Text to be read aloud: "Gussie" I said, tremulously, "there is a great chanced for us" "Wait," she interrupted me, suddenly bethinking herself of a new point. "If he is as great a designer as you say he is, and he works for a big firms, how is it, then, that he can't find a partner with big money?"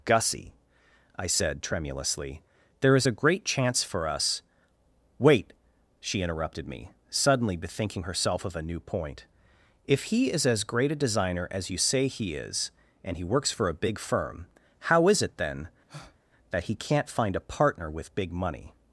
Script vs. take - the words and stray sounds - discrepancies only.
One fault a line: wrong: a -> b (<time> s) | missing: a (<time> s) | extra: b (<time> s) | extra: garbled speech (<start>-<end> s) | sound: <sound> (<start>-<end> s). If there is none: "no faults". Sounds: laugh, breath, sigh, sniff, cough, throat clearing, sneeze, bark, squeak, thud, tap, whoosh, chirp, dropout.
wrong: chanced -> chance (3.4 s)
wrong: firms -> firm (14.0 s)
sound: breath (15.9-16.2 s)